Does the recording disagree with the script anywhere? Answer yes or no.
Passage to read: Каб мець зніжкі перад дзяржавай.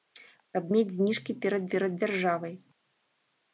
yes